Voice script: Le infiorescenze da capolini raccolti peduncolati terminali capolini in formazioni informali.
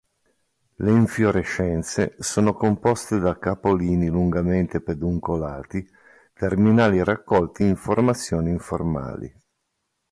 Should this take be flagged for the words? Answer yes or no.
yes